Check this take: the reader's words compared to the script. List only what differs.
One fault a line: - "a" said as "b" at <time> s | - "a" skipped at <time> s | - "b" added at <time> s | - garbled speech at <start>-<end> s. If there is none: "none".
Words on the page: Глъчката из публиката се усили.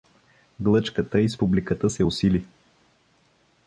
none